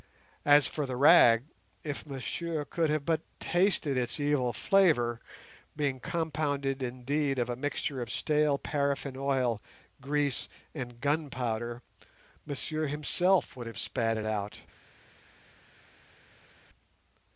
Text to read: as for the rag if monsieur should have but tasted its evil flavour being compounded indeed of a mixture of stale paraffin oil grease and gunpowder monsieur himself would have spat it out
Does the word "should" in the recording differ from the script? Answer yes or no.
yes